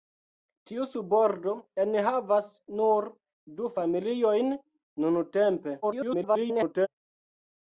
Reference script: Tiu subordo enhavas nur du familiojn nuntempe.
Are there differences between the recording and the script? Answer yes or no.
yes